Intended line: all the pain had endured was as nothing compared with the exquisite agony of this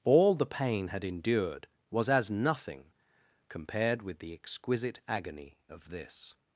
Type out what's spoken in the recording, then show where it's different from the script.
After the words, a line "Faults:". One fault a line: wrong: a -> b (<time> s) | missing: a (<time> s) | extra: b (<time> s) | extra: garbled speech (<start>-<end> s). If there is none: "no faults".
all the pain had endured was as nothing compared with the exquisite agony of this
Faults:
no faults